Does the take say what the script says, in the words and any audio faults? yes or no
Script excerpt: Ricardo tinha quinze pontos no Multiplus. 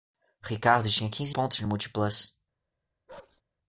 no